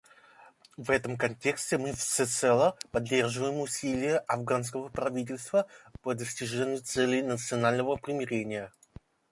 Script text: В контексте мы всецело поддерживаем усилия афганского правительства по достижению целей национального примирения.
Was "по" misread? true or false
false